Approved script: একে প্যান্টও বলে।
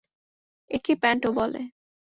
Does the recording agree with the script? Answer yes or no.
yes